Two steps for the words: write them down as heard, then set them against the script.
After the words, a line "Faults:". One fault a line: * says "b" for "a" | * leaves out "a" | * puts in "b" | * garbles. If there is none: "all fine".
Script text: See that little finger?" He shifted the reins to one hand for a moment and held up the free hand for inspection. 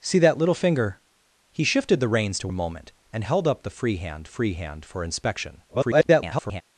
See that little finger?" He shifted the reins to a moment and held up the free hand free hand for inspection. [garbled]
Faults:
* leaves out "one hand for"
* puts in "free hand"
* garbles